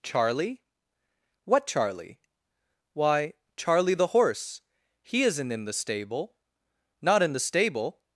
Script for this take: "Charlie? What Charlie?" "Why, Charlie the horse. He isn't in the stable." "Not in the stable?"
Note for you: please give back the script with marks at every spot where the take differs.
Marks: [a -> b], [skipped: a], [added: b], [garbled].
"Charlie? What Charlie?" "Why, Charlie the horse. He isn't in the stable." "Not in the stable?"